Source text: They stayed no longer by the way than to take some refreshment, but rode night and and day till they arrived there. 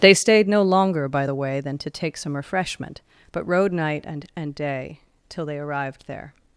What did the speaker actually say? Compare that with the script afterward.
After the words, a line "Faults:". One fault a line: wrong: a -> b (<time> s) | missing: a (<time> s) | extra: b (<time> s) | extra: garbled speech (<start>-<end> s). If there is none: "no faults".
They stayed no longer by the way than to take some refreshment, but rode night and and day till they arrived there.
Faults:
no faults